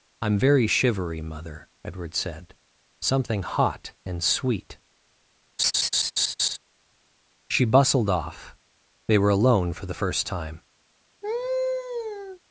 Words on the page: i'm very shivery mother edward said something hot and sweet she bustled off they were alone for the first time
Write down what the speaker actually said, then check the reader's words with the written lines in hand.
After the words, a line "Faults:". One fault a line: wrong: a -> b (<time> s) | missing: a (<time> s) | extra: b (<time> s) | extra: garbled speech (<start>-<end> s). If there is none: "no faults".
i'm very shivery mother edward said something hot and sweet she bustled off they were alone for the first time
Faults:
no faults